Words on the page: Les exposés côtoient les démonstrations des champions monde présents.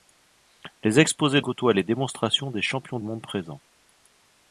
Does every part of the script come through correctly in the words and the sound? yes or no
yes